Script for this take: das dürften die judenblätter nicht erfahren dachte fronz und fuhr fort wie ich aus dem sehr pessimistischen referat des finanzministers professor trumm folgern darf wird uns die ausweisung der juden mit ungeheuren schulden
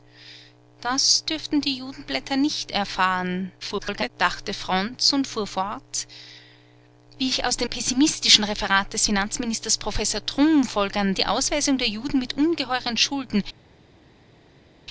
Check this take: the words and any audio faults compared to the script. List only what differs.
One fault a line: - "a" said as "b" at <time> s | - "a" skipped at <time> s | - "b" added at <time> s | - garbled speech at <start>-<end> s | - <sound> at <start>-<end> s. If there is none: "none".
- garbled speech at 3.6-4.1 s
- "sehr" skipped at 7.7 s
- "darf wird uns" skipped at 11.1 s